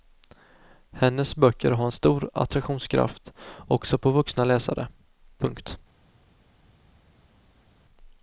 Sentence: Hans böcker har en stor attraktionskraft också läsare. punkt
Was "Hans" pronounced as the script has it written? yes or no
no